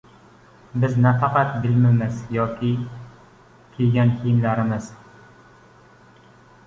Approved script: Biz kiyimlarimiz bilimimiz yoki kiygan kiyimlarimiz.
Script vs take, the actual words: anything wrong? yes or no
yes